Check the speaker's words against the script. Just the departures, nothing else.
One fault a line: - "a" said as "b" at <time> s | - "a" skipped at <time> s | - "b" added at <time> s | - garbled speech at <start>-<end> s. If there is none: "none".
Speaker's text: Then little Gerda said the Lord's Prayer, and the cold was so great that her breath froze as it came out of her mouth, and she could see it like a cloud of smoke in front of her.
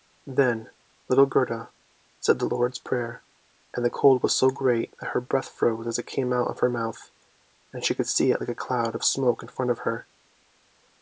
none